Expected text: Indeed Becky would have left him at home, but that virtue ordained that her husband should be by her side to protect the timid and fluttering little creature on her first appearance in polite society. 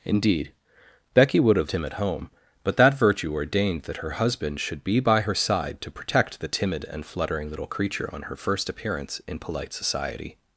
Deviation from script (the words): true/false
true